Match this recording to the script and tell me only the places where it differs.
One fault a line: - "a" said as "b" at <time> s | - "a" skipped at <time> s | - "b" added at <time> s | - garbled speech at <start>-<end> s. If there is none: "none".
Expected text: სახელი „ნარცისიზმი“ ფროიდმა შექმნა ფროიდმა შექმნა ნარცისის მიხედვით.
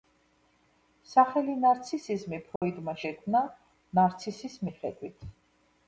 - "ფროიდმა შექმნა" skipped at 3.4 s